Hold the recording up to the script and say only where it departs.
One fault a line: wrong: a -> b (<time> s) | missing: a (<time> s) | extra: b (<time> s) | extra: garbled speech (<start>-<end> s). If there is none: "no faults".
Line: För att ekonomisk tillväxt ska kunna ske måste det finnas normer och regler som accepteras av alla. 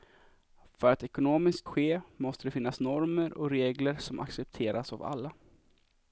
missing: tillväxt ska kunna (1.6 s)